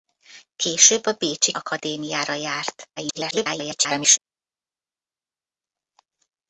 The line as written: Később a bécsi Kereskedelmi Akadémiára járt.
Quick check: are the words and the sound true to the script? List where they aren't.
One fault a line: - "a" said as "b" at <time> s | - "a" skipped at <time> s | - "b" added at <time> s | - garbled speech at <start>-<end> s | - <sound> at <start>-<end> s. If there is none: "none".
- "Kereskedelmi" skipped at 1.5 s
- garbled speech at 3.0-4.2 s